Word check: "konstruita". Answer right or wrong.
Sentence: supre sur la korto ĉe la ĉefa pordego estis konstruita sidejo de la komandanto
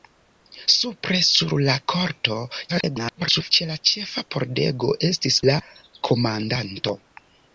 wrong